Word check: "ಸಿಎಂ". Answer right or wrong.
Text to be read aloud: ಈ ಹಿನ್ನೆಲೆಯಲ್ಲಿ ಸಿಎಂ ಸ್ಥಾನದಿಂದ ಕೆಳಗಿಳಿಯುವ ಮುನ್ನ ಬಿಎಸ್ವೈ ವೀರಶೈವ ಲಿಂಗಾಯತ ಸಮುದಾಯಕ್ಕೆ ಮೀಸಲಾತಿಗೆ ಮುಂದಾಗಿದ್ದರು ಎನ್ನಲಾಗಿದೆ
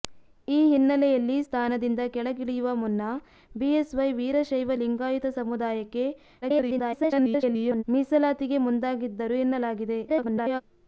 wrong